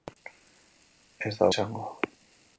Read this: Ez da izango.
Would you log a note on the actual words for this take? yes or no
no